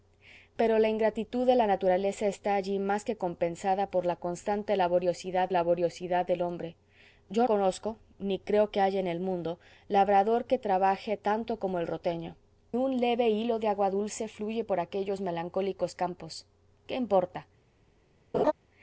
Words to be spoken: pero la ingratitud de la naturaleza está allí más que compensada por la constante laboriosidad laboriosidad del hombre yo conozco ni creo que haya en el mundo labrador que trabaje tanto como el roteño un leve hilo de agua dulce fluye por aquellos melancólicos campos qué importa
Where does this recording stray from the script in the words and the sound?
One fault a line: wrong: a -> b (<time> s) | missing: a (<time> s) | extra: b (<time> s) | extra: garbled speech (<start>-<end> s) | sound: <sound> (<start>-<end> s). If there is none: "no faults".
sound: laugh (18.3-18.5 s)